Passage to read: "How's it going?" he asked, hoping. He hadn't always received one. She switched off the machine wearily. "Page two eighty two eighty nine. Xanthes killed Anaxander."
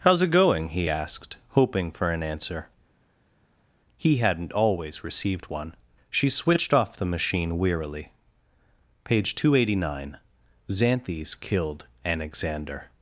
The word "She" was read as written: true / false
true